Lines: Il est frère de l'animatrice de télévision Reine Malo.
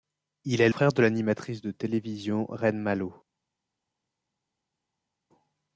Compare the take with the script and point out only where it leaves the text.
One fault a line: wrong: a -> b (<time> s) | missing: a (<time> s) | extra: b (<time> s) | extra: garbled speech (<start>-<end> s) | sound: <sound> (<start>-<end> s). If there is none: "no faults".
no faults